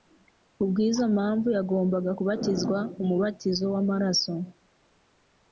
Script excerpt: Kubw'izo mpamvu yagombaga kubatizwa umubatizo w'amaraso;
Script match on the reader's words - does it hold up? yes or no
yes